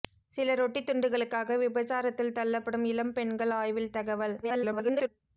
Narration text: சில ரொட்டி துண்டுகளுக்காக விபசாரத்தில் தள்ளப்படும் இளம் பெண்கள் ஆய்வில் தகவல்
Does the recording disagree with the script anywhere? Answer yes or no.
yes